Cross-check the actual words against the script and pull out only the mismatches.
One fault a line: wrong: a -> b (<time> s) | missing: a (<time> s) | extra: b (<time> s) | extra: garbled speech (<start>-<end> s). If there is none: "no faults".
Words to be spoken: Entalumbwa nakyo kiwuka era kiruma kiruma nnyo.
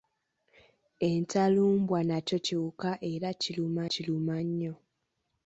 no faults